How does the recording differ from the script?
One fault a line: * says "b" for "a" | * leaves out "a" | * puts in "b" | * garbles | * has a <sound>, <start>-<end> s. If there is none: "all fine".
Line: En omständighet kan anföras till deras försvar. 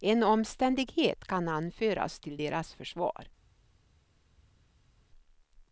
all fine